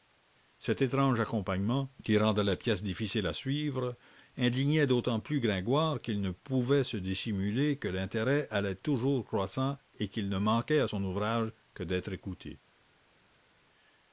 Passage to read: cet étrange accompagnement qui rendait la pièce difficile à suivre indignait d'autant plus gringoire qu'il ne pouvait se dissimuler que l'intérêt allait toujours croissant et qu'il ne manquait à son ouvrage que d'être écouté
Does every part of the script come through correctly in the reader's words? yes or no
yes